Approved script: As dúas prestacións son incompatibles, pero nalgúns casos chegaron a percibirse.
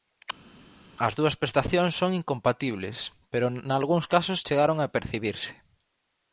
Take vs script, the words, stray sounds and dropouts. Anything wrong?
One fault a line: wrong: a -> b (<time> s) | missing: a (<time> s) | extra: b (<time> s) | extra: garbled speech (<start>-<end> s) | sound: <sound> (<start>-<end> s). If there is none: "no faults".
no faults